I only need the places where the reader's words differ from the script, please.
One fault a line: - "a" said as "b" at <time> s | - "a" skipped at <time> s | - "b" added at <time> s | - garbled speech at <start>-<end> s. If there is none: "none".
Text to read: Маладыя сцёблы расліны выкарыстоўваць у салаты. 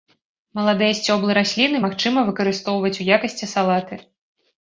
- "магчыма" added at 1.9 s
- "якасці" added at 3.2 s